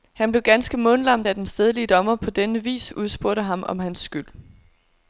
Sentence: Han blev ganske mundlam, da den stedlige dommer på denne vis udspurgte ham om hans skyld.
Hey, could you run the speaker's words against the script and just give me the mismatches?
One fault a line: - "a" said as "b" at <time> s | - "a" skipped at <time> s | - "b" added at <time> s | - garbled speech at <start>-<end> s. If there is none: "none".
none